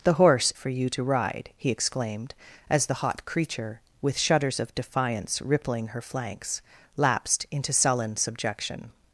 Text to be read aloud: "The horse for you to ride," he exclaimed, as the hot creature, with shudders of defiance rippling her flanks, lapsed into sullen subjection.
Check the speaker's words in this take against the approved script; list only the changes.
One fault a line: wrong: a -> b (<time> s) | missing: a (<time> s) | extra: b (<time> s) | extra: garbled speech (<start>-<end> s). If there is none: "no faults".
no faults